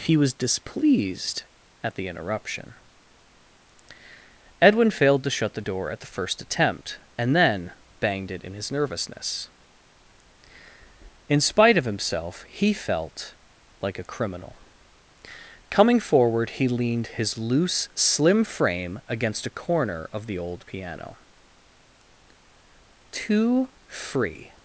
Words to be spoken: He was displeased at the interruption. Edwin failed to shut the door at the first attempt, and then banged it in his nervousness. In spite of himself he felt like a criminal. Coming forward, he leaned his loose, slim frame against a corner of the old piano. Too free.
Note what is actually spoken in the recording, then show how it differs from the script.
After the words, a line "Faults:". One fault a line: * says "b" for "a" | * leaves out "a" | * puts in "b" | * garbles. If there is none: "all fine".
He was displeased at the interruption. Edwin failed to shut the door at the first attempt, and then banged it in his nervousness. In spite of himself he felt like a criminal. Coming forward, he leaned his loose, slim frame against a corner of the old piano. Too free.
Faults:
all fine